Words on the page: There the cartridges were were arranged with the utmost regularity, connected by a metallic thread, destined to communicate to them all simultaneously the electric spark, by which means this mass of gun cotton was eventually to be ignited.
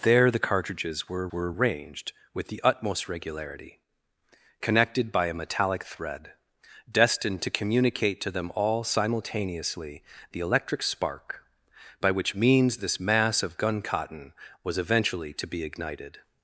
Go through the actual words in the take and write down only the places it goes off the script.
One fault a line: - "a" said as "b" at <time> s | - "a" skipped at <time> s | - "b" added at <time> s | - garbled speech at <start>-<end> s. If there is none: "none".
none